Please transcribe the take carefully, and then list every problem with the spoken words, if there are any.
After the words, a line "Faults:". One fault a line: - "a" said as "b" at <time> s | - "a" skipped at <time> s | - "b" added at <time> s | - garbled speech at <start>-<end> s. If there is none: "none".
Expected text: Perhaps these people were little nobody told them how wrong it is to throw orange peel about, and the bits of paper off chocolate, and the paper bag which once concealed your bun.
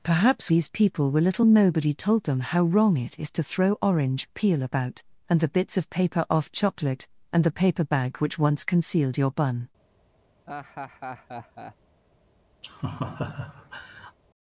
Perhaps these people were little nobody told them how wrong it is to throw orange peel about, and the bits of paper off chocolate, and the paper bag which once concealed your bun.
Faults:
none